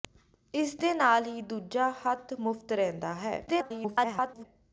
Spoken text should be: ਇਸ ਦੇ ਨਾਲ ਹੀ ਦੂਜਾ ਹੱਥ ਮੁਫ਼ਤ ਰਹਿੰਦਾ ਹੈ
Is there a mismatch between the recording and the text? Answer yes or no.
yes